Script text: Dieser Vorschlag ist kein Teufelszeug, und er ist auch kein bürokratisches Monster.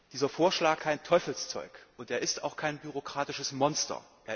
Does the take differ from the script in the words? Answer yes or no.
yes